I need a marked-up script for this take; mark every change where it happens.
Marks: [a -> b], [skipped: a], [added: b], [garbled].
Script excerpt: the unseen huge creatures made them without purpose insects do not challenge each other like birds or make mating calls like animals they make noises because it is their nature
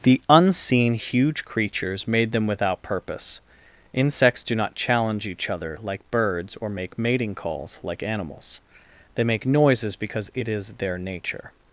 the unseen huge creatures made them without purpose insects do not challenge each other like birds or make mating calls like animals they make noises because it is their nature